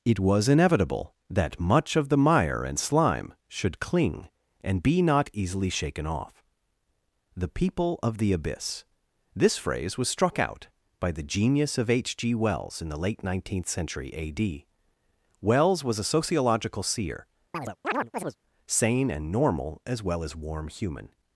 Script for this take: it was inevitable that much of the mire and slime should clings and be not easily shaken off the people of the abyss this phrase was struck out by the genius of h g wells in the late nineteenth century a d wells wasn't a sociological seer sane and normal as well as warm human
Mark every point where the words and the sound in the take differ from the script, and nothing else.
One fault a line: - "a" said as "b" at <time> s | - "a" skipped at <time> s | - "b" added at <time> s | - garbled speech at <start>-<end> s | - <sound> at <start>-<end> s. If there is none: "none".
- "clings" said as "cling" at 3.8 s
- "wasn't" said as "was" at 15.8 s
- chirp at 17.5-18.4 s